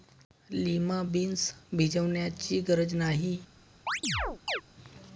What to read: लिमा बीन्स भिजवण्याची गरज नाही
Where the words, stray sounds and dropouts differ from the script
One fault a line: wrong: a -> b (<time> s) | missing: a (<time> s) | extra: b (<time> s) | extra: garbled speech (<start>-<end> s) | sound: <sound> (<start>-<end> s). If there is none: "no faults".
sound: chirp (3.9-4.6 s)